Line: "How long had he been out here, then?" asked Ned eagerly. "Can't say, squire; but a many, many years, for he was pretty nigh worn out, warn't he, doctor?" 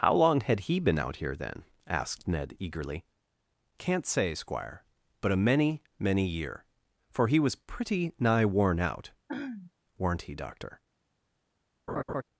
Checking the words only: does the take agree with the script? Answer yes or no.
no